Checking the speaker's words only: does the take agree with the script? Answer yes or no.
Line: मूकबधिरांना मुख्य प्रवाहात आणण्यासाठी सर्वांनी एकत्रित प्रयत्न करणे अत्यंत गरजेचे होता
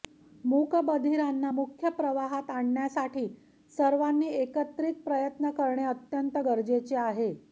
no